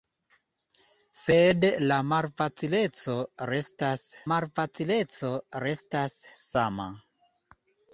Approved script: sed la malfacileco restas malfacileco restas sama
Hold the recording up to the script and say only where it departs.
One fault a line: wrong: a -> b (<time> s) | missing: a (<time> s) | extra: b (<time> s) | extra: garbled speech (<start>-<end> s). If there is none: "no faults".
no faults